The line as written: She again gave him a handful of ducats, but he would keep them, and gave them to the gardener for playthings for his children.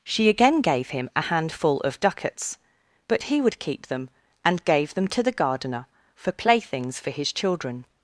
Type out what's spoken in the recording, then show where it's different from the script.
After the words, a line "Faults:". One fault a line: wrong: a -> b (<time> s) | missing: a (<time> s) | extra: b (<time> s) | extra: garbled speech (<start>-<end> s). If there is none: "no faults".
She again gave him a handful of ducats, but he would keep them, and gave them to the gardener for playthings for his children.
Faults:
no faults